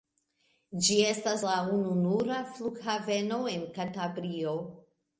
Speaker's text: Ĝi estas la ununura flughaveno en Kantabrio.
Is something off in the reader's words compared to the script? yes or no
no